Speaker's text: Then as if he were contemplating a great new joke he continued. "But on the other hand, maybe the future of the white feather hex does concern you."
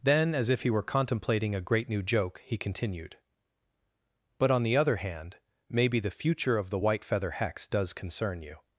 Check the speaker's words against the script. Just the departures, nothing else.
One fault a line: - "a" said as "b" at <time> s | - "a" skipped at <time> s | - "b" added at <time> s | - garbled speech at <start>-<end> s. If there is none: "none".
none